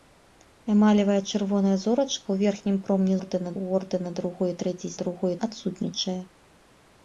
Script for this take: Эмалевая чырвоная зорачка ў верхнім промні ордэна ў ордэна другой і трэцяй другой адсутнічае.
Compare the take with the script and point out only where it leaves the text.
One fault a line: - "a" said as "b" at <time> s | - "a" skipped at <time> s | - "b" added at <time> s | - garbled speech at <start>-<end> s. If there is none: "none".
none